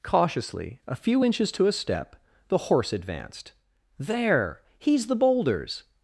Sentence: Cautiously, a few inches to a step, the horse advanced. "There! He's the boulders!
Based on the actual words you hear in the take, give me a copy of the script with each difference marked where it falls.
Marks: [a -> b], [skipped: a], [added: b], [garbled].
Cautiously, a few inches to a step, the horse advanced. "There! He's the boulders!